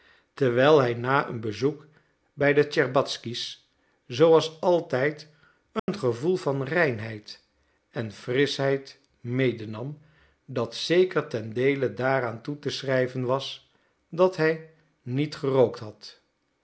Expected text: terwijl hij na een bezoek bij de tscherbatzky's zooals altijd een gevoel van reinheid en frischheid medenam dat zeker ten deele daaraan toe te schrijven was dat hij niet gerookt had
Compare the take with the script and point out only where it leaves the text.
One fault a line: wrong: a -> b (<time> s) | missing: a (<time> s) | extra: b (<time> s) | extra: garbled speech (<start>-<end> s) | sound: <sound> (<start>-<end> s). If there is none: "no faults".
sound: dropout (5.8-5.9 s)